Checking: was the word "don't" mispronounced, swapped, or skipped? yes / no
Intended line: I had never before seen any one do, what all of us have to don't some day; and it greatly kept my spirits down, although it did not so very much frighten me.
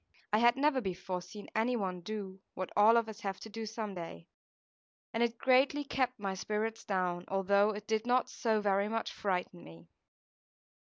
yes